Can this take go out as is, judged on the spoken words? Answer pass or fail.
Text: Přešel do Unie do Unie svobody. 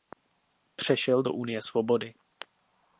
fail